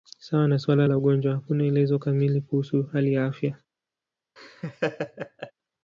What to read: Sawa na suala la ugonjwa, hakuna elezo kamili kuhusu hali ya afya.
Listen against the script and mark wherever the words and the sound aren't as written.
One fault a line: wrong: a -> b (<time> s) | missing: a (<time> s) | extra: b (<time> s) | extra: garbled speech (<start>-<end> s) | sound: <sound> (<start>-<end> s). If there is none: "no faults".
sound: laugh (4.4-5.5 s)